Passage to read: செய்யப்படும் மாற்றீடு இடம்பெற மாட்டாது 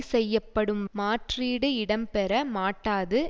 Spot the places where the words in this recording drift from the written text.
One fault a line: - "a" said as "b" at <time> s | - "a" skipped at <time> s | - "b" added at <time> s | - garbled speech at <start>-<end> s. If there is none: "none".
none